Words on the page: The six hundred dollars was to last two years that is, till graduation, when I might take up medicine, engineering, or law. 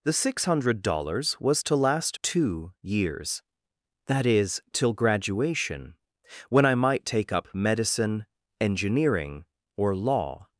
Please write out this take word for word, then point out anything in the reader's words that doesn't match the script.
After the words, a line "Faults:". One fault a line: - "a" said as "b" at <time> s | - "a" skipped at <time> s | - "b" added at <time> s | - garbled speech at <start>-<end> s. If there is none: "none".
The six hundred dollars was to last two years that is, till graduation, when I might take up medicine, engineering, or law.
Faults:
none